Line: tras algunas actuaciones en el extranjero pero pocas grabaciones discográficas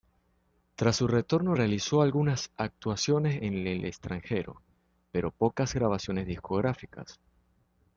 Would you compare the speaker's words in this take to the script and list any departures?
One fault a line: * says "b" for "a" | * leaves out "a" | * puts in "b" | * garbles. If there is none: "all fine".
* puts in "su retorno realizó"